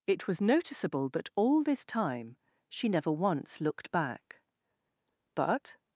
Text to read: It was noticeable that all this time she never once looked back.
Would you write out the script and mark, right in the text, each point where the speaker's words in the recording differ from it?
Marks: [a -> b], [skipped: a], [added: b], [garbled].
It was noticeable that all this time she never once looked back. [added: But]